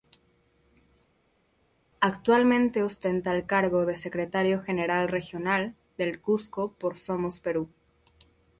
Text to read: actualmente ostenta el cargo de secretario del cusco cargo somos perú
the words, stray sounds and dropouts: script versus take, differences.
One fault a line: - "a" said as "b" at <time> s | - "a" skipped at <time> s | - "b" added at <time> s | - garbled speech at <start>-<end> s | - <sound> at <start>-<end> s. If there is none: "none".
- "general regional" added at 4.6 s
- "cargo" said as "por" at 6.7 s